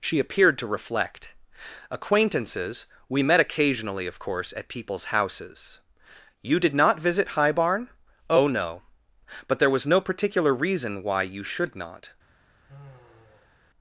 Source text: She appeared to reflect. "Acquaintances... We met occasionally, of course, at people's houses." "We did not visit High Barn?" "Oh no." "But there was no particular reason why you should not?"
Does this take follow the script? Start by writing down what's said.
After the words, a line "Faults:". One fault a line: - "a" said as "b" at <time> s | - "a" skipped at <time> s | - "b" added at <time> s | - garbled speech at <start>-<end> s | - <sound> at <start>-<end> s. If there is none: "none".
She appeared to reflect. "Acquaintances... We met occasionally, of course, at people's houses." "You did not visit High Barn?" "Oh no." "But there was no particular reason why you should not?"
Faults:
- "We" said as "You" at 6.4 s
- sigh at 12.7-13.6 s